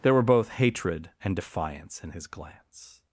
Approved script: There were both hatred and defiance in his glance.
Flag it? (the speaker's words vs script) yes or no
no